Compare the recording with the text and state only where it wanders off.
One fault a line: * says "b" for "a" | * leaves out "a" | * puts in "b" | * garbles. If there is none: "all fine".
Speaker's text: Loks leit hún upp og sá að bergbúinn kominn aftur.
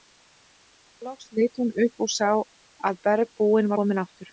all fine